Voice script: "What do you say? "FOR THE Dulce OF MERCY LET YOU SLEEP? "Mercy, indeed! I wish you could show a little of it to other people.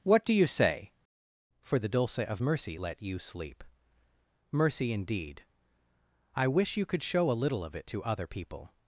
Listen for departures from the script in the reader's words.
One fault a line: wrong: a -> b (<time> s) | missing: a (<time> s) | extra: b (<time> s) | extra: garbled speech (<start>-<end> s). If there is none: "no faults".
no faults